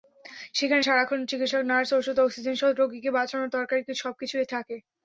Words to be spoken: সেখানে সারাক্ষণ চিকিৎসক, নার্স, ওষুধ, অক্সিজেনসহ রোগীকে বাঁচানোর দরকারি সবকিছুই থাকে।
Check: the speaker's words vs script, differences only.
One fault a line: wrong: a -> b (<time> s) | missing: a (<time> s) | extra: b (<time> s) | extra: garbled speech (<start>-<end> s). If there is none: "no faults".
no faults